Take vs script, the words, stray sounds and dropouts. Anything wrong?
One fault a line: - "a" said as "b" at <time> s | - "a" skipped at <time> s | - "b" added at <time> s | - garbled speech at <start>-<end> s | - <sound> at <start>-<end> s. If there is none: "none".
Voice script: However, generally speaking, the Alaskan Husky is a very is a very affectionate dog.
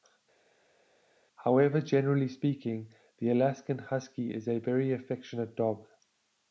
- "is a very" skipped at 4.9 s